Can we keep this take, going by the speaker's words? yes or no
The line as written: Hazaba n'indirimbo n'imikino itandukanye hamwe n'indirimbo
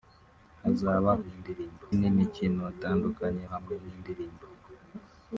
yes